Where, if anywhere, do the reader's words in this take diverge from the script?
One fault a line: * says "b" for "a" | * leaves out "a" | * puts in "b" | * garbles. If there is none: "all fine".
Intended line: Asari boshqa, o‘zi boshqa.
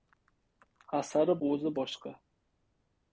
* leaves out "boshqa"